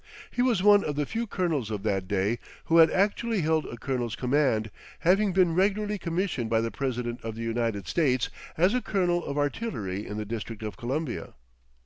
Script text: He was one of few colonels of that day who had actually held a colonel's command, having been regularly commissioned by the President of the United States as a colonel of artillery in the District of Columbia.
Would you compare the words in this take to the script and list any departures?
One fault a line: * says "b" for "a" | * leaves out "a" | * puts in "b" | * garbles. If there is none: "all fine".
* puts in "the"